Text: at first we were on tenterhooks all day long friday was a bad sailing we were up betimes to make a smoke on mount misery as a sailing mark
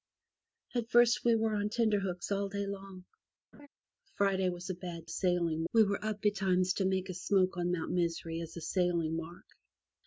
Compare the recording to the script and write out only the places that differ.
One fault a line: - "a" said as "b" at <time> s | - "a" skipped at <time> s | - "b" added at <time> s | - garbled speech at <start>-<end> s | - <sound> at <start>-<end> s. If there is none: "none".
- laugh at 3.5-3.7 s